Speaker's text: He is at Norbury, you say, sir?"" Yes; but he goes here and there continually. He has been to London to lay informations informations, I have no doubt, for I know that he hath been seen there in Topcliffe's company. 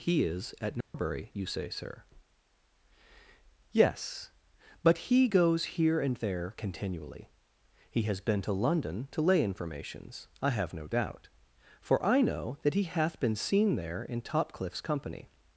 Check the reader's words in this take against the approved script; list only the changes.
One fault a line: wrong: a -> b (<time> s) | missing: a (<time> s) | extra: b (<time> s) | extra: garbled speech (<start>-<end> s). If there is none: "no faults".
missing: informations (10.3 s)